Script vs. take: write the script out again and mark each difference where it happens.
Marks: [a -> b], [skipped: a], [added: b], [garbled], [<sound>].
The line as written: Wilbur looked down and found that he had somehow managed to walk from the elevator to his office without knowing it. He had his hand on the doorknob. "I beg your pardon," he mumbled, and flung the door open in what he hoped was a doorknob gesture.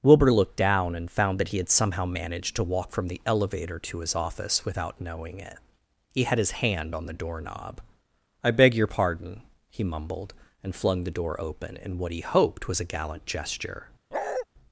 Wilbur looked down and found that he had somehow managed to walk from the elevator to his office without knowing it. He had his hand on the doorknob. "I beg your pardon," he mumbled, and flung the door open in what he hoped was a [doorknob -> gallant] gesture. [bark]